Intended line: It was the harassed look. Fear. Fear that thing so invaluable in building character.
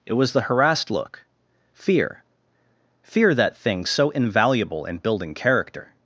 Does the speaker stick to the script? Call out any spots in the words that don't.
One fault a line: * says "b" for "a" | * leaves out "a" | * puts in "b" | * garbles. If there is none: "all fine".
all fine